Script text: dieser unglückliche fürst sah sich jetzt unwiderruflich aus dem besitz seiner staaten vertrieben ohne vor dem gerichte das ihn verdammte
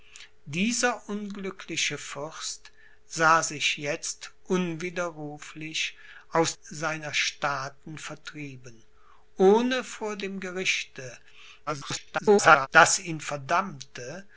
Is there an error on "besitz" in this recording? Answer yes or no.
yes